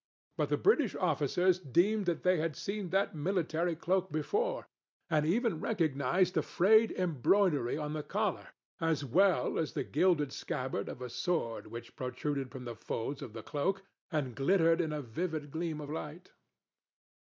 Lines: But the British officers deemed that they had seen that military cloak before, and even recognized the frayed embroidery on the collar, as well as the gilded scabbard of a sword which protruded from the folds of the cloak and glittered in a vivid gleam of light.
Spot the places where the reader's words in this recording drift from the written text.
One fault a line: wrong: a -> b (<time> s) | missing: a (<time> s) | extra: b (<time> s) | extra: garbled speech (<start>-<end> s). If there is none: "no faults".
no faults